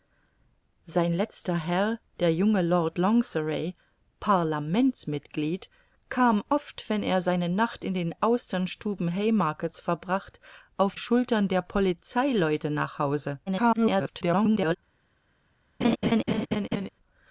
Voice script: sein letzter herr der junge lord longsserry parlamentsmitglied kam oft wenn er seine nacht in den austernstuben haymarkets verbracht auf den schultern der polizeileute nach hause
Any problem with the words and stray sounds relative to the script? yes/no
yes